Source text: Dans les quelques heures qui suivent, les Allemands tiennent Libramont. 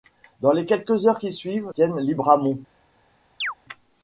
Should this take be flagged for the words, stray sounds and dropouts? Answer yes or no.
yes